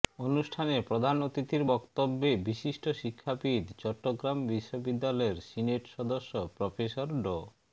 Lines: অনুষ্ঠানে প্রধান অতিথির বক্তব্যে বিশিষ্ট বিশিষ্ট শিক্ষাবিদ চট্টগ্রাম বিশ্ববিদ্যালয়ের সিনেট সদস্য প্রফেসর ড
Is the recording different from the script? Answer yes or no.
yes